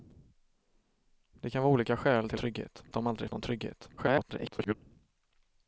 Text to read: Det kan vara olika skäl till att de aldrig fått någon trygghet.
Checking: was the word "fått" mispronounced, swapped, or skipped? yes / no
yes